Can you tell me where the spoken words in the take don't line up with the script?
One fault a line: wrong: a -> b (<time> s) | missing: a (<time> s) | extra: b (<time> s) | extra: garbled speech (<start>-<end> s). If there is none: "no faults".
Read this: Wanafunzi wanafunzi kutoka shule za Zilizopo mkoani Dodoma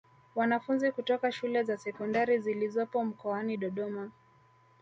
missing: wanafunzi (0.9 s)
extra: Sekondari (1.8 s)